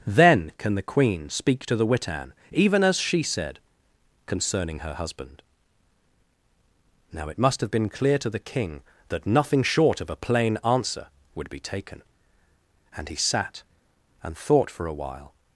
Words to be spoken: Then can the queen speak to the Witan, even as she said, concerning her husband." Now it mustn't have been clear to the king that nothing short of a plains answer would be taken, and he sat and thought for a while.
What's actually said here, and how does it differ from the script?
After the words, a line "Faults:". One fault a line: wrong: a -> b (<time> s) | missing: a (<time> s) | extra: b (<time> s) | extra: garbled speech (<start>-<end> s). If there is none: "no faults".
Then can the queen speak to the Witan, even as she said, concerning her husband." Now it must have been clear to the king that nothing short of a plain answer would be taken, and he sat and thought for a while.
Faults:
wrong: mustn't -> must (7.4 s)
wrong: plains -> plain (10.2 s)